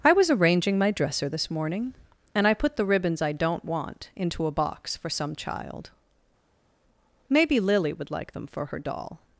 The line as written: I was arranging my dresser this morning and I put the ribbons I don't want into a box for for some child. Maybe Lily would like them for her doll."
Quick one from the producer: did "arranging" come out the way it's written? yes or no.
yes